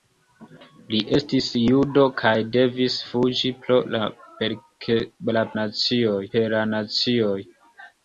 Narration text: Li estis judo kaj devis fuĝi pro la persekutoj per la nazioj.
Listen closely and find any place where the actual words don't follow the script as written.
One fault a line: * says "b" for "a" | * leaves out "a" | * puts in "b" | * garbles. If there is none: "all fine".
* says "nazioj" for "persekutoj"